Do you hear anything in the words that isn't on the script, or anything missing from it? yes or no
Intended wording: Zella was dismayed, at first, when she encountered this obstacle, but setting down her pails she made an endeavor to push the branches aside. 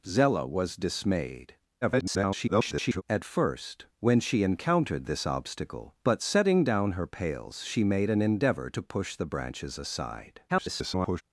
yes